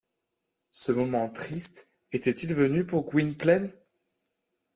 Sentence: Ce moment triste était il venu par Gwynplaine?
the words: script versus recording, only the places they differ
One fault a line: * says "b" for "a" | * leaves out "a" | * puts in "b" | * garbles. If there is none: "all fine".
* says "pour" for "par"